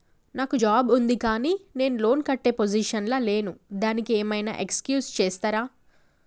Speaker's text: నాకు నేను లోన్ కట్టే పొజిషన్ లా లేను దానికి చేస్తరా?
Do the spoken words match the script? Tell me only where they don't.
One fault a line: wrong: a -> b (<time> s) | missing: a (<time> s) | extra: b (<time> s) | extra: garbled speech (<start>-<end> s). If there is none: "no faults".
extra: జాబ్ ఉంది కానీ (0.5 s)
extra: ఏం ఐనా ఎక్స్క్యూజ్ (4.1 s)